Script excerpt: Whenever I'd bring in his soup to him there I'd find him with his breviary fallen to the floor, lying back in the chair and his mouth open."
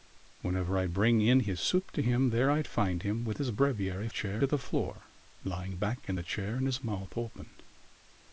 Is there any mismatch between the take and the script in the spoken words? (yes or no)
yes